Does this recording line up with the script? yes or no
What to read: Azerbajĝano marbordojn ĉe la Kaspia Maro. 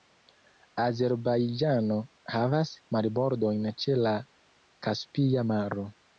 no